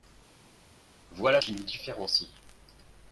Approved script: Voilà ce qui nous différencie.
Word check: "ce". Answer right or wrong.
wrong